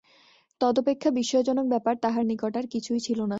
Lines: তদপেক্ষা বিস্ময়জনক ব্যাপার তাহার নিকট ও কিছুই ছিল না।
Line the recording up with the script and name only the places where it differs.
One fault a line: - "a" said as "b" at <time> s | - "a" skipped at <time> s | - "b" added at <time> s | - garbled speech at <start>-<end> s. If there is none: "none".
- "ও" said as "আর" at 2.6 s